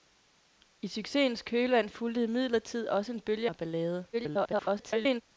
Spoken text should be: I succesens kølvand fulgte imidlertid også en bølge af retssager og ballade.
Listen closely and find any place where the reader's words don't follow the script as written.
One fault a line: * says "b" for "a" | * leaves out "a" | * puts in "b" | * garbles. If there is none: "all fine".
* leaves out "af retssager"
* garbles